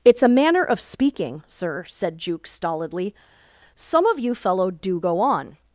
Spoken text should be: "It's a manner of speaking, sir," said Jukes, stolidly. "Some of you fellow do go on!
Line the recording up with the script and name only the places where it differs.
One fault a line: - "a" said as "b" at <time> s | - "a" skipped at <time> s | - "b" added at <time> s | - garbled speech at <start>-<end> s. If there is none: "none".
none